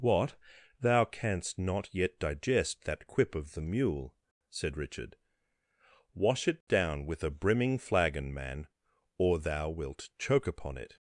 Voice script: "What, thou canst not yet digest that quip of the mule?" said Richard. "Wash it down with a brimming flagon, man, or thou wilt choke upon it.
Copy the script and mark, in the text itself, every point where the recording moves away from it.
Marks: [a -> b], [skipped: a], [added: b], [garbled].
"What, thou canst not yet digest that quip of the mule?" said Richard. "Wash it down with a brimming flagon, man, or thou wilt choke upon it.